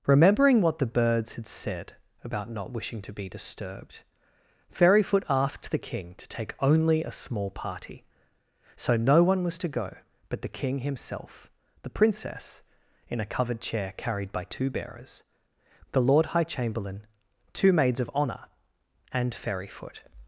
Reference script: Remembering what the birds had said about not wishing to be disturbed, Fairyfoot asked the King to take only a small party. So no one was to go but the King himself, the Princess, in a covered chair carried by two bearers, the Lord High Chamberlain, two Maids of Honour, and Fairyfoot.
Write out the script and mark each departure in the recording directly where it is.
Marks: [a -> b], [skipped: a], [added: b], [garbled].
Remembering what the birds had said about not wishing to be disturbed, Fairyfoot asked the King to take only a small party. So no one was to go but the King himself, the Princess, in a covered chair carried by two bearers, the Lord High Chamberlain, two Maids of Honour, and Fairyfoot.